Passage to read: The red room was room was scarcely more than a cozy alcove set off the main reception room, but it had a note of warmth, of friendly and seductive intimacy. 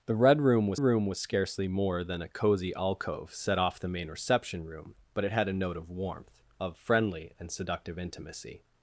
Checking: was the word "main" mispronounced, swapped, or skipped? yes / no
no